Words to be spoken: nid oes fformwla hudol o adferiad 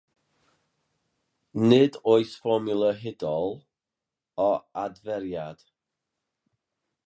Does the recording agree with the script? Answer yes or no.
yes